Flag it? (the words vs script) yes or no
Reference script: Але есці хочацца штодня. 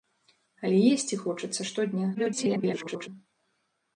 yes